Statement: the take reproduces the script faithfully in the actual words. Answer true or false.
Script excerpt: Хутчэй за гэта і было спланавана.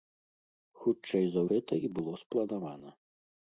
true